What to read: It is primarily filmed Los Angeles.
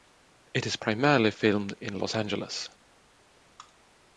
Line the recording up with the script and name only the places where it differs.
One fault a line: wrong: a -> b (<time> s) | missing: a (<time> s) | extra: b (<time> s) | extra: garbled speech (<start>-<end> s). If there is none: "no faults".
extra: in (1.8 s)